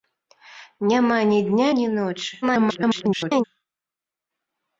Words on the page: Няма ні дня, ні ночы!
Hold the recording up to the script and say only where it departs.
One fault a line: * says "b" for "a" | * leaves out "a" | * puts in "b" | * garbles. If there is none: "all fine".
* garbles